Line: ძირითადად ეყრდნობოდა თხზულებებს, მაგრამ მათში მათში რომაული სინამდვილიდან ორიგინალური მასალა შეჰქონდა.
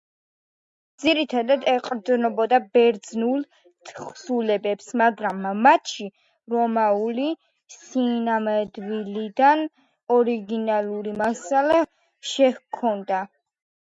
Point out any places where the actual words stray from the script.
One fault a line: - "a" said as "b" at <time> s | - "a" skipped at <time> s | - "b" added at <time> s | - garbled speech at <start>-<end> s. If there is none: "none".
- "ბერძნულ" added at 2.8 s
- "მათში" skipped at 6.1 s